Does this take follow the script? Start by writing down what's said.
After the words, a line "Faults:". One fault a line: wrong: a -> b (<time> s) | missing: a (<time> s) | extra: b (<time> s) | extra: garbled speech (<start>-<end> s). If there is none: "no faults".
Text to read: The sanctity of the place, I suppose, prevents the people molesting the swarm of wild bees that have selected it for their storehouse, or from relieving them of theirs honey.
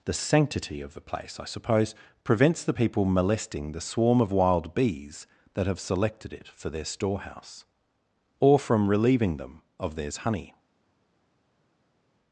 The sanctity of the place, I suppose, prevents the people molesting the swarm of wild bees that have selected it for their storehouse, or from relieving them of theirs honey.
Faults:
no faults